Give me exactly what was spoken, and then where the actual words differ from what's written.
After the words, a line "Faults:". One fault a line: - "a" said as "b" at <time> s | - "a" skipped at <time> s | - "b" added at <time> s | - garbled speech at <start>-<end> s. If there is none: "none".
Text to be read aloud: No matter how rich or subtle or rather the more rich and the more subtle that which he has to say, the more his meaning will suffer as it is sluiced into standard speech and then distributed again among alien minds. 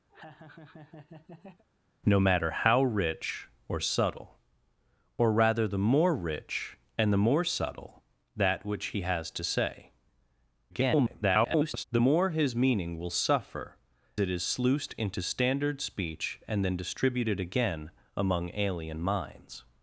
No matter how rich or subtle or rather the more rich and the more subtle that which he has to say, [garbled] the more his meaning will suffer it is sluiced into standard speech and then distributed again among alien minds.
Faults:
- garbled speech at 10.7-11.8 s
- "as" skipped at 13.8 s